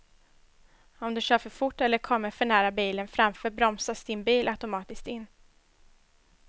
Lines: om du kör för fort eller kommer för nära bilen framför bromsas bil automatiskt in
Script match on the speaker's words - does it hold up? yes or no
no